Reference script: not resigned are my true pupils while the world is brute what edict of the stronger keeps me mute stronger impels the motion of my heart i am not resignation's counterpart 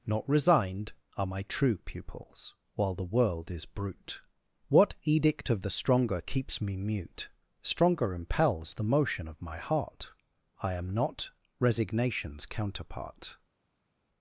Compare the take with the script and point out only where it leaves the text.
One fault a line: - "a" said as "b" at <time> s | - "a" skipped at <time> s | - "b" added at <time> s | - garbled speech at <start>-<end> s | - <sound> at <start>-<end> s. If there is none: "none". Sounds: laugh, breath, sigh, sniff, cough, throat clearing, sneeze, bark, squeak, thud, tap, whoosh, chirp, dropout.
none